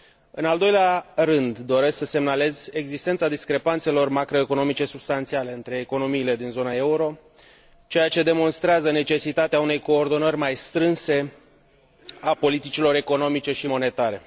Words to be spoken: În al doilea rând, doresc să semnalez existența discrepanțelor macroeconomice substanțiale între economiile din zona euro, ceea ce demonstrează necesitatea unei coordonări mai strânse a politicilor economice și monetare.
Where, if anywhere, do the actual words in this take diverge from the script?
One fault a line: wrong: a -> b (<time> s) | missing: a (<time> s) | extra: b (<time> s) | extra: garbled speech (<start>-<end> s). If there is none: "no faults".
no faults